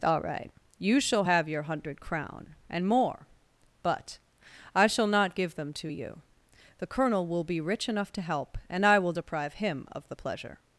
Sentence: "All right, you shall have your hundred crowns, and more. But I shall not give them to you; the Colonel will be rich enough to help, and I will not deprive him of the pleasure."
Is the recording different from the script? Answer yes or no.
yes